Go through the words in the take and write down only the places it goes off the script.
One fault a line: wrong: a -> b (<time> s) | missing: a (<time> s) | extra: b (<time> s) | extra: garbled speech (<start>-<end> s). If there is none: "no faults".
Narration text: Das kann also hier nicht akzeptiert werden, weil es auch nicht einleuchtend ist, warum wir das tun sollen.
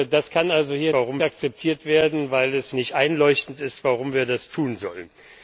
wrong: nicht -> warum (0.9 s)
missing: auch (2.7 s)